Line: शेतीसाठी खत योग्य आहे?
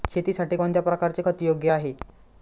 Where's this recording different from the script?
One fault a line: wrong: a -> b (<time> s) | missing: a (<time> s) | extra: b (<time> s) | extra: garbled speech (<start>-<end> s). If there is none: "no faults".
extra: कोणत्या प्रकारचे (0.5 s)